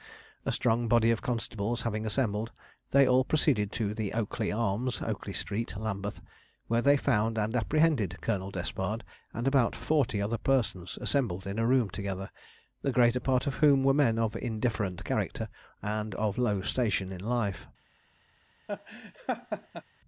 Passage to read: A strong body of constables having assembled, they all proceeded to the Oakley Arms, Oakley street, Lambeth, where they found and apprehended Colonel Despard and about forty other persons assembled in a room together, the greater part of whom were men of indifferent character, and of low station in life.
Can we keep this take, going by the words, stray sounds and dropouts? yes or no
no